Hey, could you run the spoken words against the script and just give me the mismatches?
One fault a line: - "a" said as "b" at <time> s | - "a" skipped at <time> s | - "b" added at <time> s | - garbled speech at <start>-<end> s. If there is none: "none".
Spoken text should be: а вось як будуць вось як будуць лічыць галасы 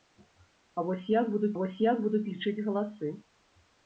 none